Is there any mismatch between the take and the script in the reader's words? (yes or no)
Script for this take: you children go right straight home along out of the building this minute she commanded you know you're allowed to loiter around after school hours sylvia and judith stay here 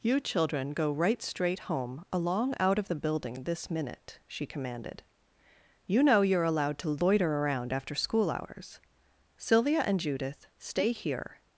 no